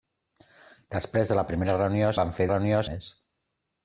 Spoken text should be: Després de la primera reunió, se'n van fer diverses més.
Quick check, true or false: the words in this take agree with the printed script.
false